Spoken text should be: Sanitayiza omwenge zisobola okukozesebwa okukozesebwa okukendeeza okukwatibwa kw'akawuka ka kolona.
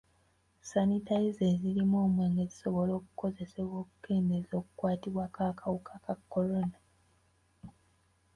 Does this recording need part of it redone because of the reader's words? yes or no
yes